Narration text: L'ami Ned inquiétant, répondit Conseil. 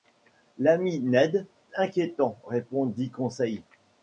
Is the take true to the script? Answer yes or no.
yes